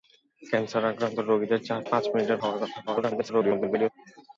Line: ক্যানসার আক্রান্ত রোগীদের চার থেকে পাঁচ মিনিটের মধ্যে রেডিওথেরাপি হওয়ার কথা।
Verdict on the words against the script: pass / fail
fail